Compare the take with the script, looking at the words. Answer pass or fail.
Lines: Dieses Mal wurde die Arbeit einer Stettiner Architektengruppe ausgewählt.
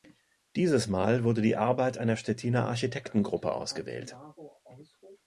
pass